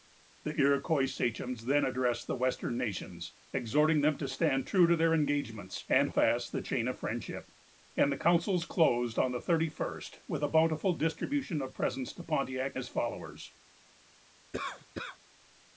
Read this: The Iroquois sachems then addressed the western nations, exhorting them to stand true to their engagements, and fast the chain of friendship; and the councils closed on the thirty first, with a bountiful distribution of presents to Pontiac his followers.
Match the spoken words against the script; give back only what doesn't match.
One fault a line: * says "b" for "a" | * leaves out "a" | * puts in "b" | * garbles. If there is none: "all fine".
all fine